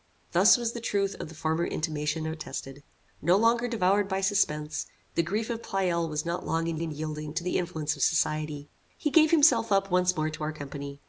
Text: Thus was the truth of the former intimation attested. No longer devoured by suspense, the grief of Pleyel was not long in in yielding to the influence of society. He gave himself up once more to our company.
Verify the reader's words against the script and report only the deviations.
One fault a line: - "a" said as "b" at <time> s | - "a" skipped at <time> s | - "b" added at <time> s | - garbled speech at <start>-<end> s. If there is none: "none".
none